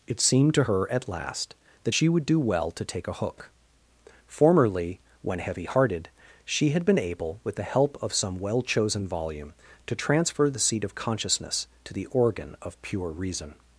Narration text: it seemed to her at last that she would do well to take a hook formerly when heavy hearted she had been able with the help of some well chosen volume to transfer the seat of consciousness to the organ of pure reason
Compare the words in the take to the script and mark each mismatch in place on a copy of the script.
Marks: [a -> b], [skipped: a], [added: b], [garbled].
it seemed to her at last that she would do well to take a hook formerly when heavy hearted she had been able with the help of some well chosen volume to transfer the seat of consciousness to the organ of pure reason